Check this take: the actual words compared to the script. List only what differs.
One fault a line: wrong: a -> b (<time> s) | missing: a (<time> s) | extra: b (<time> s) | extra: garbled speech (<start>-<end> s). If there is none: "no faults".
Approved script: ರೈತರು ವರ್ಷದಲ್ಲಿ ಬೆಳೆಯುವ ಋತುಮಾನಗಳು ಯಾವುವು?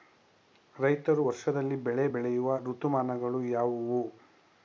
extra: ಬೆಳೆ (1.8 s)